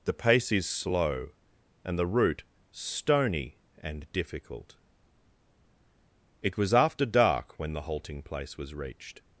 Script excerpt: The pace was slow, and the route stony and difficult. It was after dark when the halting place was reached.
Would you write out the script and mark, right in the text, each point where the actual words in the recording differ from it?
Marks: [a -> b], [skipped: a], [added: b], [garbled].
The pace [was -> is] slow, and the route stony and difficult. It was after dark when the halting place was reached.